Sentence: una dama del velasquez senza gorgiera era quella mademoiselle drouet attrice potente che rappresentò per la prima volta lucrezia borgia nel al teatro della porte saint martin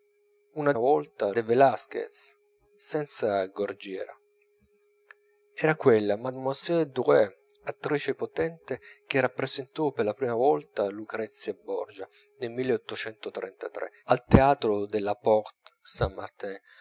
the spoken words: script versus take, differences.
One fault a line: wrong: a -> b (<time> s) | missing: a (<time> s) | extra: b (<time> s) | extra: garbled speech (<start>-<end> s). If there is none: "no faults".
wrong: dama -> volta (0.8 s)